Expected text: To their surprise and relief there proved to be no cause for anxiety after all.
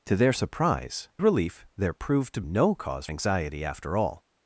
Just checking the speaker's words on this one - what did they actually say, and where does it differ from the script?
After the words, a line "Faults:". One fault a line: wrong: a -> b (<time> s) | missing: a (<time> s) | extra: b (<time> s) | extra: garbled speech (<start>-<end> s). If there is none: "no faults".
To their surprise relief there proved to no cause anxiety after all.
Faults:
missing: and (1.1 s)
missing: be (2.4 s)
missing: for (3.1 s)